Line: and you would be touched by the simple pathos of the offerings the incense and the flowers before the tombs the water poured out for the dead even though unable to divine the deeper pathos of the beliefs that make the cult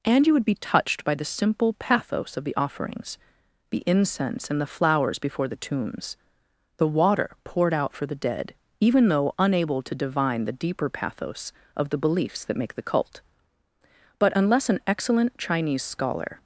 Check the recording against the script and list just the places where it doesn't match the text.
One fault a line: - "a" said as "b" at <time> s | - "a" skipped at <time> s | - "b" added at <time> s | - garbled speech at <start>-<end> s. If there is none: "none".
- "but unless an excellent chinese scholar" added at 14.2 s